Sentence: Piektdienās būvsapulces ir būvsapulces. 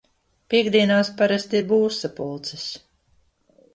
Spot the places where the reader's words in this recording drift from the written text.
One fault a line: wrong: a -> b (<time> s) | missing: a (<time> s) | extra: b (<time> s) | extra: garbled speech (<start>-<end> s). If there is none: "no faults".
wrong: būvsapulces -> parasti (1.2 s)